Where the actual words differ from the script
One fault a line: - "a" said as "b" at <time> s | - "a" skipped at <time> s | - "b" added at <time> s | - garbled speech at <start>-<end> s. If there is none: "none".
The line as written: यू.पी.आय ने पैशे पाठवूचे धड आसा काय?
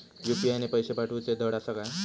none